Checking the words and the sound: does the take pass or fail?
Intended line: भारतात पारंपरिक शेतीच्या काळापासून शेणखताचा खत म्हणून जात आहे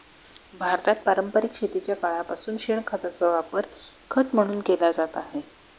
fail